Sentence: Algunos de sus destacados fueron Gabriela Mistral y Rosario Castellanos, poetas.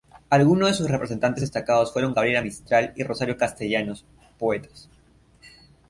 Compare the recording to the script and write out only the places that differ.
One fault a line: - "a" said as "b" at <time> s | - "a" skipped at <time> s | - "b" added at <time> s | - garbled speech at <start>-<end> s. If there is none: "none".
- "representantes" added at 0.9 s